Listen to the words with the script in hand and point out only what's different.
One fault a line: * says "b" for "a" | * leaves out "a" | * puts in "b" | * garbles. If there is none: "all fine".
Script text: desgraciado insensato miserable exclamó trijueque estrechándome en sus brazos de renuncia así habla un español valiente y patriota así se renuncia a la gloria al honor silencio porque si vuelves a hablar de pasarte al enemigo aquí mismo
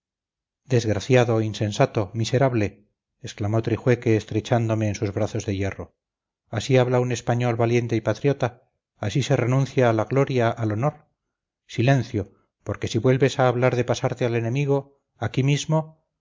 * says "hierro" for "renuncia"